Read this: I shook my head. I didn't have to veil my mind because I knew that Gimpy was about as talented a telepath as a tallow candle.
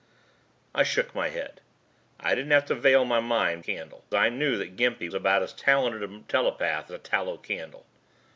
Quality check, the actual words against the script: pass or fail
fail